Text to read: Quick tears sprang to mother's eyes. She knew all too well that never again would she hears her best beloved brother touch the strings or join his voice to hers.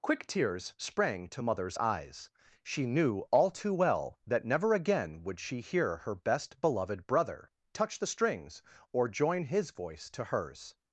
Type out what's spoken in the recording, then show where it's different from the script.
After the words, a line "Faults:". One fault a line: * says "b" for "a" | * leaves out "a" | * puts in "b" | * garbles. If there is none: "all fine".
Quick tears sprang to mother's eyes. She knew all too well that never again would she hear her best beloved brother touch the strings or join his voice to hers.
Faults:
* says "hear" for "hears"